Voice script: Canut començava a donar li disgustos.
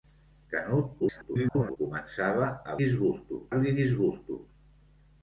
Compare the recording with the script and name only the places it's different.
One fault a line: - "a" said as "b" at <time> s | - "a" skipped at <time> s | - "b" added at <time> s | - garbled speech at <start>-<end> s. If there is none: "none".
- garbled speech at 1.0-1.8 s
- "donar" said as "disgustos" at 2.8 s